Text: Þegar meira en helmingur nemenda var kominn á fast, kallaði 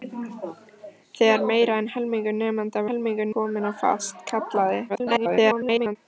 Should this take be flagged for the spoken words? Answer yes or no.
yes